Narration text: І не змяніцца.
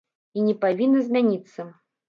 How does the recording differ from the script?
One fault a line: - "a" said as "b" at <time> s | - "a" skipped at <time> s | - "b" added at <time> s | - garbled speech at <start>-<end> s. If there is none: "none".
- "павінна" added at 0.6 s